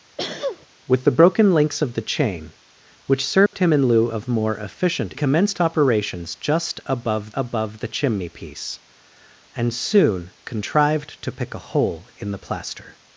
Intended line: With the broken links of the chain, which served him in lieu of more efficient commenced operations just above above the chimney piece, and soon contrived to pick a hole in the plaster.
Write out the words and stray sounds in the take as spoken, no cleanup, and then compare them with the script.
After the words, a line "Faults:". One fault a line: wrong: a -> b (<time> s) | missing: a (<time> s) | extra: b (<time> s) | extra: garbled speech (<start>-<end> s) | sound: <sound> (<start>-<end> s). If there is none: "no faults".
With the broken links of the chain, which served him in lieu of more efficient commenced operations just above above the chimney piece, and soon contrived to pick a hole in the plaster.
Faults:
sound: sneeze (0.2-0.7 s)
sound: dropout (3.5-3.5 s)